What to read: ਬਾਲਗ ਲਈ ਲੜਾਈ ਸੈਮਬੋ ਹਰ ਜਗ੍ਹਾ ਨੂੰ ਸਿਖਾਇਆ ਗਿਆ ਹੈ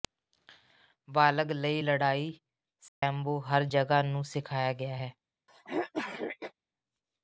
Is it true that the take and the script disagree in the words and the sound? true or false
true